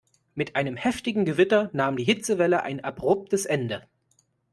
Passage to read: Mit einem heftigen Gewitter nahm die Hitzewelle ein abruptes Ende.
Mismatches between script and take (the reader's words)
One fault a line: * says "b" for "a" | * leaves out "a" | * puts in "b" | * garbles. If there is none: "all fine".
all fine